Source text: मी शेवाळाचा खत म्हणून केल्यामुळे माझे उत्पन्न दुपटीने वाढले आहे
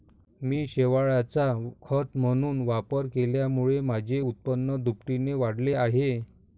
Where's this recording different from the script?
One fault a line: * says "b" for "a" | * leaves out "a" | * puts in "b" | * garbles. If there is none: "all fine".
* puts in "वापर"